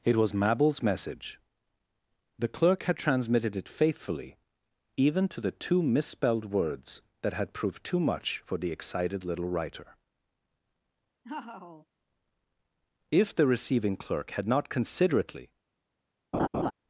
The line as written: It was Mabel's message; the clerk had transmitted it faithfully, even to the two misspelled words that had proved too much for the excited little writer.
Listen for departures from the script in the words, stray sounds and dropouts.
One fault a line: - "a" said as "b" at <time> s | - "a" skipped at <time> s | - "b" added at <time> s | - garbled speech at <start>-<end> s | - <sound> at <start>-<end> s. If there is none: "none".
- laugh at 11.2-11.9 s
- "If the receiving clerk had not considerately" added at 13.1 s
- laugh at 16.3-16.7 s